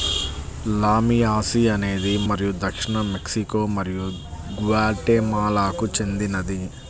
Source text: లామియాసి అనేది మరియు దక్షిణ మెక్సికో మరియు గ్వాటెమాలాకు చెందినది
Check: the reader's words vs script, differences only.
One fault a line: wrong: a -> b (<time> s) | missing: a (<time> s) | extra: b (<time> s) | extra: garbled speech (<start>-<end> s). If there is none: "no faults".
no faults